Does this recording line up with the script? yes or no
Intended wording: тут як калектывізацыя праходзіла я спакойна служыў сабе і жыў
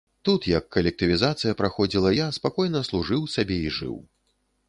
yes